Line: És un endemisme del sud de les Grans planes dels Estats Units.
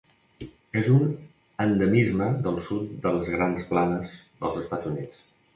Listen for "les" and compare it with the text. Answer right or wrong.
right